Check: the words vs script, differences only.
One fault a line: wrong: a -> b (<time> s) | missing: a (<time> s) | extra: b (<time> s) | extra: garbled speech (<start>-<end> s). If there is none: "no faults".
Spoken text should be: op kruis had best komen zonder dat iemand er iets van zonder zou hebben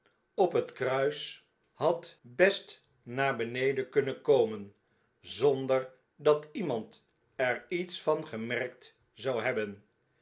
extra: het (0.5 s)
extra: naar beneden kunnen (3.0 s)
wrong: zonder -> gemerkt (8.3 s)